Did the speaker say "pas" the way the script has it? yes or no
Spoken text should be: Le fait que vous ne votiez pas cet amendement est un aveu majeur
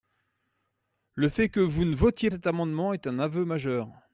no